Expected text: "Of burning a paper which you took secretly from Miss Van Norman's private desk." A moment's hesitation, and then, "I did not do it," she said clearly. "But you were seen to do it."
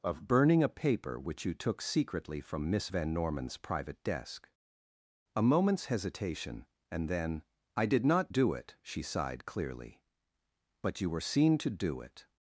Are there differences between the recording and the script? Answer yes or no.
yes